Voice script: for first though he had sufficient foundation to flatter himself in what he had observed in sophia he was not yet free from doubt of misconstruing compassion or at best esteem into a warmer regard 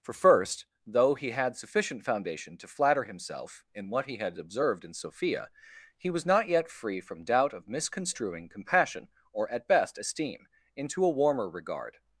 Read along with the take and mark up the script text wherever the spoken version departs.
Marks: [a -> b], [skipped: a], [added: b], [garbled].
for first though he had sufficient foundation to flatter himself in what he had observed in sophia he was not yet free from doubt of misconstruing compassion or at best esteem into a warmer regard